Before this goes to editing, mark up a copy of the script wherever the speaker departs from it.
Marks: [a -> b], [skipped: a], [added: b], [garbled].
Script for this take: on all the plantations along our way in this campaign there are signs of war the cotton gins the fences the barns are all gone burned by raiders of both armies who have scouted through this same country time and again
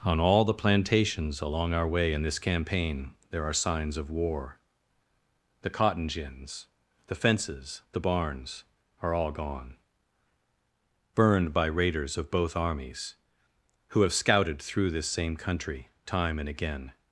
on all the plantations along our way in this campaign there are signs of war the cotton gins the fences the barns are all gone burned by raiders of both armies who have scouted through this same country time and again